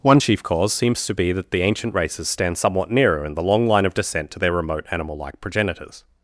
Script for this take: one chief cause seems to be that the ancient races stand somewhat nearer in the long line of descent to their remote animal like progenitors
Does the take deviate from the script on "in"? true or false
false